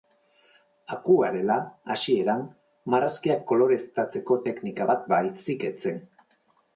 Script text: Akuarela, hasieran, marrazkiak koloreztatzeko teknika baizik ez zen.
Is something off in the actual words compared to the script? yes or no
yes